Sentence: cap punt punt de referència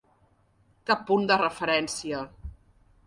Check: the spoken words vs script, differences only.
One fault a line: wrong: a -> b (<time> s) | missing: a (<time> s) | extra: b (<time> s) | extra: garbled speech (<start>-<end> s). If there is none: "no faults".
missing: punt (1.3 s)